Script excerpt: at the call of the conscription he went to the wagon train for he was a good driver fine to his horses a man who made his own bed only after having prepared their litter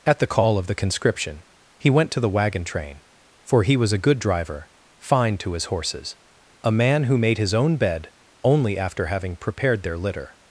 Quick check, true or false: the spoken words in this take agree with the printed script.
true